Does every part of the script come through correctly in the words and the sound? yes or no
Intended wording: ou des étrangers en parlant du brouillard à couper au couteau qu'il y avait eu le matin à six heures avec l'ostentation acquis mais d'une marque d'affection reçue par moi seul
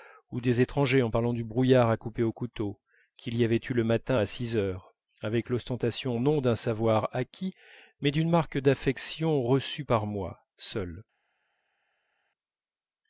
no